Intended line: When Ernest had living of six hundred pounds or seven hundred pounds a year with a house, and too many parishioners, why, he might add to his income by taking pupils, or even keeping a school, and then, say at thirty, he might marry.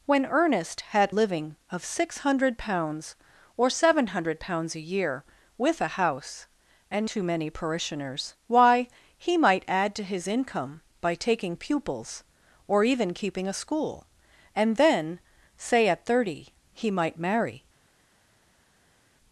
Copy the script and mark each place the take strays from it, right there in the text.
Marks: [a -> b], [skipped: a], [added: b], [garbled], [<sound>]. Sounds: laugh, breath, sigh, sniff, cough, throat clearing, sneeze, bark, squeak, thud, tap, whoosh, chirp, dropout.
When Ernest had living of six hundred pounds or seven hundred pounds a year with a house, and too many parishioners, why, he might add to his income by taking pupils, or even keeping a school, and then, say at thirty, he might marry.